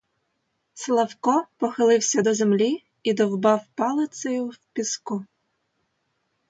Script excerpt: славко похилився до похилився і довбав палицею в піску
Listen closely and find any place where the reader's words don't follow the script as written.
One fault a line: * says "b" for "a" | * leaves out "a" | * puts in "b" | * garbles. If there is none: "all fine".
* says "землі" for "похилився"